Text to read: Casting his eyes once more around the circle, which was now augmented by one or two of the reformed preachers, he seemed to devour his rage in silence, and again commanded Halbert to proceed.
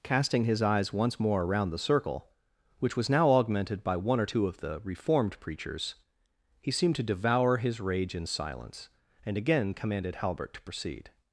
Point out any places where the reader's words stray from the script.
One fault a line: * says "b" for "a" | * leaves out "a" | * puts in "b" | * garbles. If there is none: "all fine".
all fine